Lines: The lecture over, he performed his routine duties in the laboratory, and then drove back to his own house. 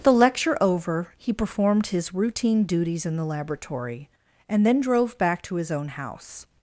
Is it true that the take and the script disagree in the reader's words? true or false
false